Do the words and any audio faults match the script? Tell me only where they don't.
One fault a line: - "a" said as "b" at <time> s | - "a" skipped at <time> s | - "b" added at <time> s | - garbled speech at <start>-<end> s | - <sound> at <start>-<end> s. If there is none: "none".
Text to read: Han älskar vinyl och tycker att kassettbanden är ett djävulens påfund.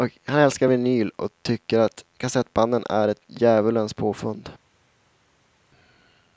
none